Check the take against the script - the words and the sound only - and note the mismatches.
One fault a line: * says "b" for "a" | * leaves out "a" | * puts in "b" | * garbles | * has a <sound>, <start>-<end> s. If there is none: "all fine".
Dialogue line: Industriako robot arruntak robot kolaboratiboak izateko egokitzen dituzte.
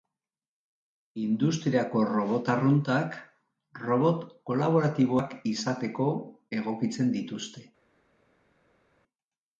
all fine